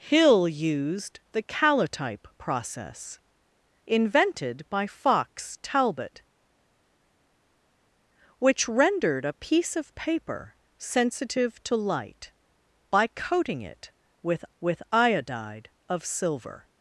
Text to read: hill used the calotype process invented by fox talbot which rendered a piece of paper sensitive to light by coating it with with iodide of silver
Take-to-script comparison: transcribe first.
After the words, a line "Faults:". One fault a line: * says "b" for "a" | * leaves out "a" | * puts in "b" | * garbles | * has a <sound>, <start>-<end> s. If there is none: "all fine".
hill used the calotype process invented by fox talbot which rendered a piece of paper sensitive to light by coating it with with iodide of silver
Faults:
all fine